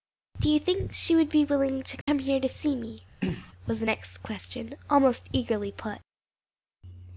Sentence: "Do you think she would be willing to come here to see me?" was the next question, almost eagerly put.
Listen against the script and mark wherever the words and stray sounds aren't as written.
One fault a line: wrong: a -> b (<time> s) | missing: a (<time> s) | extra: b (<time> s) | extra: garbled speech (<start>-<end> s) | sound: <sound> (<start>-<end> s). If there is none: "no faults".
sound: dropout (2.0-2.1 s)
sound: throat clearing (3.2-3.5 s)